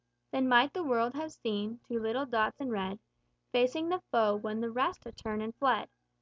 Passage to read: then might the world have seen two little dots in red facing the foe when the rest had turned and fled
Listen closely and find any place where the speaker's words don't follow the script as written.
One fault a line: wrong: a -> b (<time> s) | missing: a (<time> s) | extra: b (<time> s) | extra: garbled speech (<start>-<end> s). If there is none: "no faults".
no faults